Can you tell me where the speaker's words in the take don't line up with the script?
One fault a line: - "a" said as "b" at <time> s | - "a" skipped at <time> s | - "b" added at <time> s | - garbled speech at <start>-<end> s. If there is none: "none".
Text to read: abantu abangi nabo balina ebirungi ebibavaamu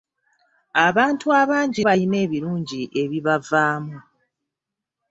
- "nabo" skipped at 1.8 s